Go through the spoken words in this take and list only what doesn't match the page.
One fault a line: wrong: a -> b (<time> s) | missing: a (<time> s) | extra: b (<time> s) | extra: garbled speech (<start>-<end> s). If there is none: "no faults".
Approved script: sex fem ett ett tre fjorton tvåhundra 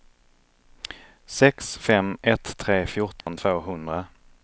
missing: ett (2.6 s)